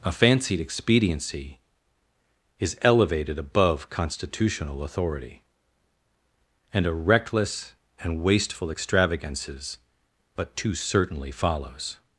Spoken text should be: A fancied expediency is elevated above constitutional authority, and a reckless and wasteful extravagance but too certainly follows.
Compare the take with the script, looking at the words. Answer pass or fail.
fail